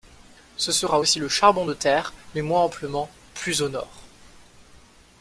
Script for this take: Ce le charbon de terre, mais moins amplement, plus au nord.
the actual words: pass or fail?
fail